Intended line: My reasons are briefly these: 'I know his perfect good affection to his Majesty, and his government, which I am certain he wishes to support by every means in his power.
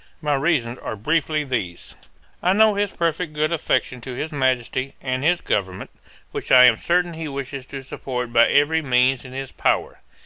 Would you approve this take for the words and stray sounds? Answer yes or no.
yes